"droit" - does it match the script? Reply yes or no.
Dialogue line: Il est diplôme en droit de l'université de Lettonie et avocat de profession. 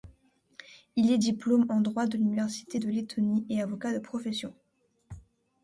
yes